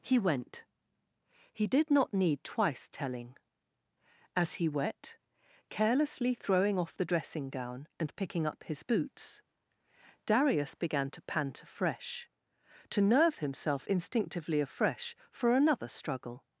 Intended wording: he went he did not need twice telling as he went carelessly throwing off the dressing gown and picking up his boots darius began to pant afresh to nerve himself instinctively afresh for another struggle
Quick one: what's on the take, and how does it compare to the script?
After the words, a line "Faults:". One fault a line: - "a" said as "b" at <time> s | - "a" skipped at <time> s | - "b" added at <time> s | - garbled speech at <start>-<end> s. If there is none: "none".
he went he did not need twice telling as he wet carelessly throwing off the dressing gown and picking up his boots darius began to pant afresh to nerve himself instinctively afresh for another struggle
Faults:
- "went" said as "wet" at 4.7 s